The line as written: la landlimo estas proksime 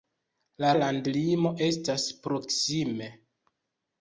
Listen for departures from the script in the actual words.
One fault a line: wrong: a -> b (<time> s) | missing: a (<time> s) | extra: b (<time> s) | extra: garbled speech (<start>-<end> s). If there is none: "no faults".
no faults